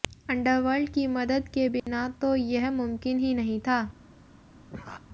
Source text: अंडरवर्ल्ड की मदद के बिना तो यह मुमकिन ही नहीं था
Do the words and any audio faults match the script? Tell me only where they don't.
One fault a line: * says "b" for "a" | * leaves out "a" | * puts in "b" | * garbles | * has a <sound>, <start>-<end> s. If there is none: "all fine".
* has a dropout, 1.8-1.9 s
* has a laugh, 4.7-5.1 s